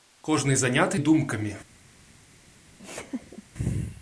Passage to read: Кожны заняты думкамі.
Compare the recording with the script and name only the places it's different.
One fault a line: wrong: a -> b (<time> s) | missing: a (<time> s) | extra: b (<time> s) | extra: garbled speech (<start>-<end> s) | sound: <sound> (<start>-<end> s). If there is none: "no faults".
sound: laugh (2.8-3.4 s)